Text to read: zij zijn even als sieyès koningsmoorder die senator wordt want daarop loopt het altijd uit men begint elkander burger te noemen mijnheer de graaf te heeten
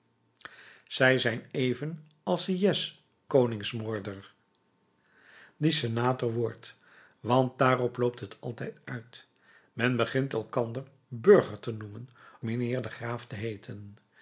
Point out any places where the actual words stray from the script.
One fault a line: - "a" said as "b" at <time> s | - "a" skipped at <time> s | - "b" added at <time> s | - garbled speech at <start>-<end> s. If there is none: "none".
none